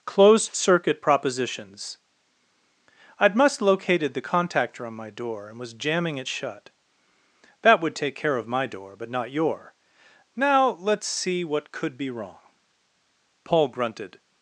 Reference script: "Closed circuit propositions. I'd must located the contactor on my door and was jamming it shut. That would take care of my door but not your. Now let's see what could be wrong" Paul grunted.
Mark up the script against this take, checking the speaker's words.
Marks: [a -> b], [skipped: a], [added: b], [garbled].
"Closed circuit propositions. I'd must located the contactor on my door and was jamming it shut. That would take care of my door but not your. Now let's see what could be wrong" Paul grunted.